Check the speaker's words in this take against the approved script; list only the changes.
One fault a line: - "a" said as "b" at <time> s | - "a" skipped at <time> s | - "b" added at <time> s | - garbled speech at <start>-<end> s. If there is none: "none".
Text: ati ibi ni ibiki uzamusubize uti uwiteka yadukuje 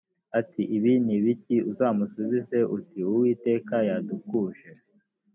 none